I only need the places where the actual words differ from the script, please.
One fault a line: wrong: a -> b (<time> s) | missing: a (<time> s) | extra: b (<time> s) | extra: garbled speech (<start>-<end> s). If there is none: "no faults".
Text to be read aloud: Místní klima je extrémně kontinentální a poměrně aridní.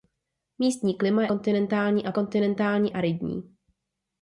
missing: extrémně (1.3 s)
wrong: poměrně -> kontinentální (2.1 s)